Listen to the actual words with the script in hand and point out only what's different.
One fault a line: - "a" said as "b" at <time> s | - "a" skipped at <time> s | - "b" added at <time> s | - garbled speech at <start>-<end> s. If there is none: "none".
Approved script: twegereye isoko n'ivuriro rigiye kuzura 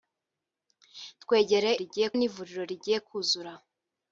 - "isoko" said as "rigiye" at 1.8 s